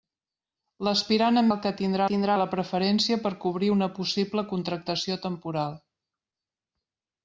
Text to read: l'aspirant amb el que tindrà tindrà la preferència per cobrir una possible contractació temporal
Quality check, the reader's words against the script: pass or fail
pass